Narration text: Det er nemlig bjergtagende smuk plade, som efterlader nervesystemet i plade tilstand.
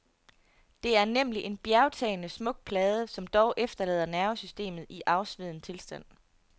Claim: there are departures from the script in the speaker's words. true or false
true